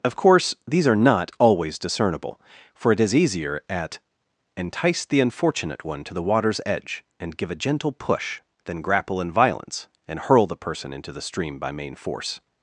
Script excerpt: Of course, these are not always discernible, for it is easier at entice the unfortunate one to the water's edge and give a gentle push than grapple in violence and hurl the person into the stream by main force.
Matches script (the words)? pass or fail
pass